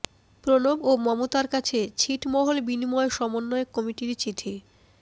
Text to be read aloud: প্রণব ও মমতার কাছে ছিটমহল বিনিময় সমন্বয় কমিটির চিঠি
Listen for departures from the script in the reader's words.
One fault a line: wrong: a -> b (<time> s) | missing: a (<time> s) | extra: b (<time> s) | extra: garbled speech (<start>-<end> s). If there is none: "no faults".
no faults